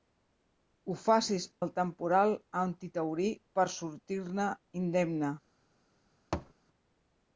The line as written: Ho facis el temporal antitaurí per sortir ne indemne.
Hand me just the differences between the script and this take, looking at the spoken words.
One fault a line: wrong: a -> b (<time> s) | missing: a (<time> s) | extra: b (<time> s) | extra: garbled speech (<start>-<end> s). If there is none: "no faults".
no faults